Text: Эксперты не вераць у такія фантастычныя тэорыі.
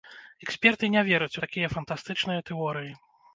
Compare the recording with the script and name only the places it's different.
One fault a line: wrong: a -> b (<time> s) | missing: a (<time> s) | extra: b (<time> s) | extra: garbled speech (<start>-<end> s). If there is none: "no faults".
no faults